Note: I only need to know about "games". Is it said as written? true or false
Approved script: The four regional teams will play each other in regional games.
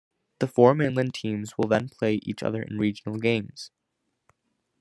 true